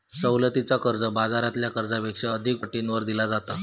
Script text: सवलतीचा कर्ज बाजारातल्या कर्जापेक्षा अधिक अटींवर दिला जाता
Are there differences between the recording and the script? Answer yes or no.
no